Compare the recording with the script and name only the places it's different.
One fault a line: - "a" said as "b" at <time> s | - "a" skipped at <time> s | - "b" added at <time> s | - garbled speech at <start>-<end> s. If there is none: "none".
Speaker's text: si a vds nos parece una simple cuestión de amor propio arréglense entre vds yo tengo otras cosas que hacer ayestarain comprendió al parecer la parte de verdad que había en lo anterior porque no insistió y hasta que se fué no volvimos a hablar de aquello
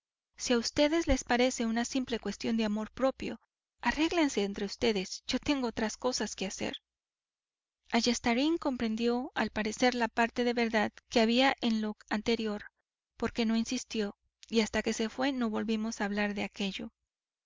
- "nos" said as "les" at 1.1 s